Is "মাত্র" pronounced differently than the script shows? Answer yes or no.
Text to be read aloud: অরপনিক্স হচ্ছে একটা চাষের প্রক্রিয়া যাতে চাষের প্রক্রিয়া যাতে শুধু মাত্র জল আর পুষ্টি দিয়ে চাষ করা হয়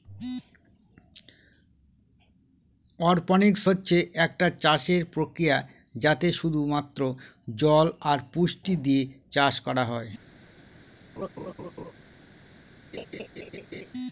no